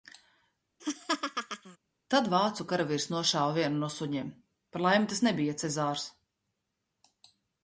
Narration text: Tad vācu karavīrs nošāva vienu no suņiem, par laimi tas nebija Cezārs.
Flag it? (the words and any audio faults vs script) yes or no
yes